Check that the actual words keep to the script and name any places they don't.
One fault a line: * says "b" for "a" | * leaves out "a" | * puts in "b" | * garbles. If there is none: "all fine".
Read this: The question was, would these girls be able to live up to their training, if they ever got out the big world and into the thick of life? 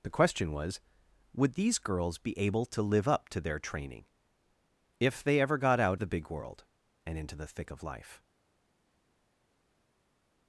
all fine